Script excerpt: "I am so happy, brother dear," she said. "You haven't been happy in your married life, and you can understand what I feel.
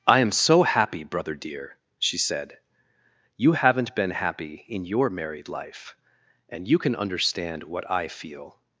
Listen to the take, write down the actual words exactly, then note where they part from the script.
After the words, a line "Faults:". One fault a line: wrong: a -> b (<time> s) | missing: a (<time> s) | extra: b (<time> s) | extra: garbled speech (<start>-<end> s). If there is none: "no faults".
"I am so happy, brother dear," she said. "You haven't been happy in your married life, and you can understand what I feel.
Faults:
no faults